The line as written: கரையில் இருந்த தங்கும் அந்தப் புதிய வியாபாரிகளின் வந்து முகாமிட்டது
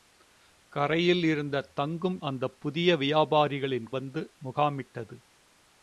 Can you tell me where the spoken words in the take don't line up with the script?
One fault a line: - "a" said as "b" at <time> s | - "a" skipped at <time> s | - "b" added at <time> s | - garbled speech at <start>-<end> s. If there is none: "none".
none